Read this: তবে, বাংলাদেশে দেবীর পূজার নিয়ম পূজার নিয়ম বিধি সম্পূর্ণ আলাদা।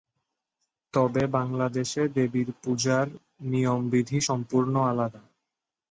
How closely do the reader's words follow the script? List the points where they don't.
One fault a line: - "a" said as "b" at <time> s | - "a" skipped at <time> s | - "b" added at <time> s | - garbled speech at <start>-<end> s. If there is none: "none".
- "পূজার নিয়ম" skipped at 3.8 s